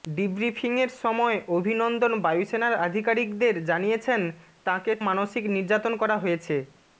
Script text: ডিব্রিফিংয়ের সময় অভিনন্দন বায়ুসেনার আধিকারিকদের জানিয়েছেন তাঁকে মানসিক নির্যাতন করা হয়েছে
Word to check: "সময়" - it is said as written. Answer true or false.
true